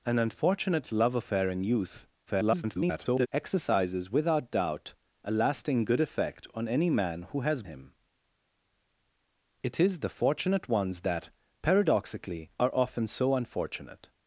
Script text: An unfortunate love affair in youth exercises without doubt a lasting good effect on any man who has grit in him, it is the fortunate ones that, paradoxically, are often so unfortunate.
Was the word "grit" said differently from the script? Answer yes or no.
yes